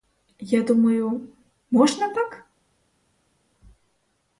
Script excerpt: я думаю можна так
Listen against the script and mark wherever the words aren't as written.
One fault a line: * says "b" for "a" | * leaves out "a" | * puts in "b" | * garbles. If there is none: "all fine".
all fine